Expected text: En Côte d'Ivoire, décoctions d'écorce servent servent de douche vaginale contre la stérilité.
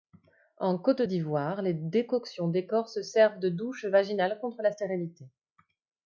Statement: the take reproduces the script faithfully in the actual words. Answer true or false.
false